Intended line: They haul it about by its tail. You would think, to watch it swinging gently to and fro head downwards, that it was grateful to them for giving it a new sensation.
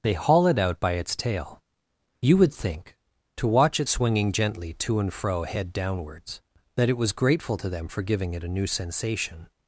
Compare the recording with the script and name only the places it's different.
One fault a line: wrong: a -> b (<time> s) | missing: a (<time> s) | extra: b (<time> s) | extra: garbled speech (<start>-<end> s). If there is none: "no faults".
wrong: about -> out (0.6 s)